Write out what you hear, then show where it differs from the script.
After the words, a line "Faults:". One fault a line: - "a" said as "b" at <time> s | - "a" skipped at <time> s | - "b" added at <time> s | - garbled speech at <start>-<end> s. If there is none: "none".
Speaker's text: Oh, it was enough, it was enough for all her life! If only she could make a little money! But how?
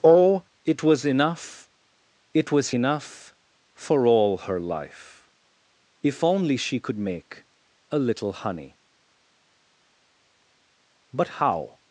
Oh, it was enough, it was enough for all her life! If only she could make a little honey! But how?
Faults:
- "money" said as "honey" at 8.3 s